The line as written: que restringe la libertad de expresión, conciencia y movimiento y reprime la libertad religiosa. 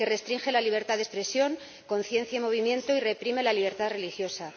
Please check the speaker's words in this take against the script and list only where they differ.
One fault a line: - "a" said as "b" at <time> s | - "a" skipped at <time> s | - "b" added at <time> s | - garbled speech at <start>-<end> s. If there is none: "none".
none